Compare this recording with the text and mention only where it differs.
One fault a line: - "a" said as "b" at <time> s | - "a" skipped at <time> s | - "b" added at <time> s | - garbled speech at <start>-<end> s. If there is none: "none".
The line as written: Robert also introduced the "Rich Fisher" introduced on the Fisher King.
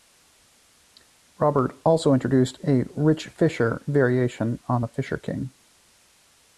- "the" said as "a" at 2.6 s
- "introduced" said as "variation" at 3.8 s